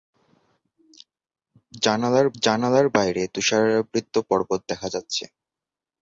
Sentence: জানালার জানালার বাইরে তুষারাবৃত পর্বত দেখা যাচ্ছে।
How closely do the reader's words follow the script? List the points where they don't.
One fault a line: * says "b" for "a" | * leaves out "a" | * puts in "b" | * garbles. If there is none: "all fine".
all fine